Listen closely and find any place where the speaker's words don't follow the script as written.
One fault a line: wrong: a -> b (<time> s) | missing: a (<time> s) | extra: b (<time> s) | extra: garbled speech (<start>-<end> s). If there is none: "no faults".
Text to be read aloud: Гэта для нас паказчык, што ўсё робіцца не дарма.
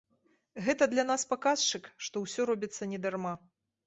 no faults